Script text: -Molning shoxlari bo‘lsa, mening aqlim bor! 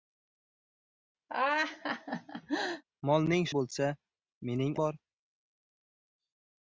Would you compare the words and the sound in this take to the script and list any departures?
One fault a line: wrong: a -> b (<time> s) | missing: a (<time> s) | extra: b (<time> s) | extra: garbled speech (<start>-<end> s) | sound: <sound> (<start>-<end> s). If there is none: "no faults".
sound: laugh (1.3-2.8 s)
missing: shoxlari (3.5 s)
missing: aqlim (4.7 s)